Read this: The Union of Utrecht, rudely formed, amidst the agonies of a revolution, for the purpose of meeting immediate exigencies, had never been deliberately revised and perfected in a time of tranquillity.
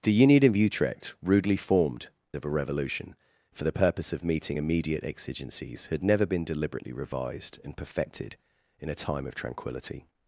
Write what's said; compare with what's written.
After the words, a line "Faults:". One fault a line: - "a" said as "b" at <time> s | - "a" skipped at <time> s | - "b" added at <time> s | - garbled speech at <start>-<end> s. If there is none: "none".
The Union of Utrecht, rudely formed, of a revolution, for the purpose of meeting immediate exigencies, had never been deliberately revised and perfected in a time of tranquillity.
Faults:
- "amidst the agonies" skipped at 2.1 s